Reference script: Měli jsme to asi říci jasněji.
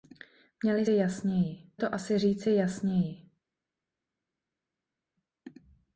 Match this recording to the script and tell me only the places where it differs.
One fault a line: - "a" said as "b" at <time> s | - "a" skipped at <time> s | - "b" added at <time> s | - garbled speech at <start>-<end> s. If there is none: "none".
- "jsme" said as "jasněji" at 0.9 s